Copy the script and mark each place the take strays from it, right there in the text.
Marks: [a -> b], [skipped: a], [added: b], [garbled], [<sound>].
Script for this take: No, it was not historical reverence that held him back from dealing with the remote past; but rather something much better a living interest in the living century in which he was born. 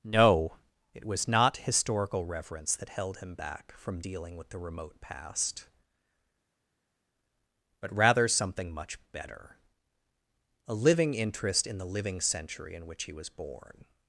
No, it was not historical reverence that held him back from dealing with the remote past; but rather something much better a living interest in the living century in which he was born.